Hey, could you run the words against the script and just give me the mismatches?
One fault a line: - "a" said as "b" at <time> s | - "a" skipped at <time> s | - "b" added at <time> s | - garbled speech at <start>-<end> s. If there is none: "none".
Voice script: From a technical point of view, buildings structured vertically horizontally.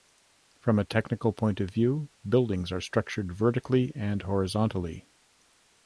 - "are" added at 2.7 s
- "and" added at 4.0 s